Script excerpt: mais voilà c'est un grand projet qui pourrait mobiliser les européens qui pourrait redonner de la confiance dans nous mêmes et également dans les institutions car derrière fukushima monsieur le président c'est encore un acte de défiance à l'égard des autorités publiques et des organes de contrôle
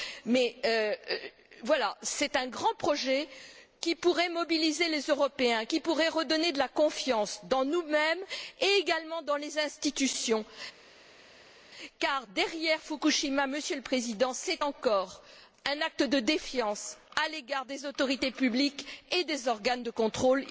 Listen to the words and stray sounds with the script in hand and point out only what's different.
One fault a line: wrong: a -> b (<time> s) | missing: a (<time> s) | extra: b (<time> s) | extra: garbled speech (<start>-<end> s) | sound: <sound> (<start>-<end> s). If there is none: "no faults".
no faults